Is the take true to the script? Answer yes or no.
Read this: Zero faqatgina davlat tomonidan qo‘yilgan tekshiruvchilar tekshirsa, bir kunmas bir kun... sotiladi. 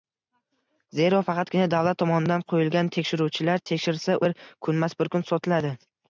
yes